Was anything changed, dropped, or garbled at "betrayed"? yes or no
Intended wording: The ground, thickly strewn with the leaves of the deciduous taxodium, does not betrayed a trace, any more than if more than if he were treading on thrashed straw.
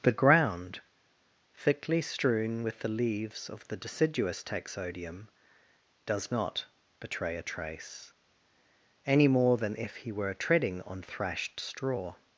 yes